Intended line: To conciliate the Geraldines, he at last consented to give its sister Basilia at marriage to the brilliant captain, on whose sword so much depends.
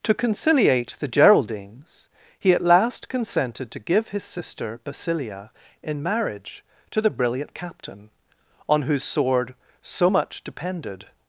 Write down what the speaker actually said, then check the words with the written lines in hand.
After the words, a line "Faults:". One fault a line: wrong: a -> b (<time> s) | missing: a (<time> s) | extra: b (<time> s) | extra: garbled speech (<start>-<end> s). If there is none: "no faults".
To conciliate the Geraldines, he at last consented to give his sister Basilia in marriage to the brilliant captain, on whose sword so much depended.
Faults:
wrong: its -> his (4.1 s)
wrong: at -> in (5.8 s)
wrong: depends -> depended (10.4 s)